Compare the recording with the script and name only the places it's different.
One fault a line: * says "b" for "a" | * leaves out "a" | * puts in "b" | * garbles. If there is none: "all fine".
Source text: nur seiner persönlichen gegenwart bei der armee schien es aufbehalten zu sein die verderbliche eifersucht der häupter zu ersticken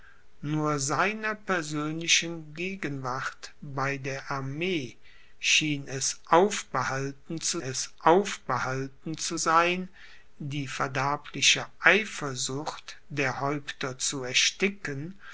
* puts in "es aufbehalten zu"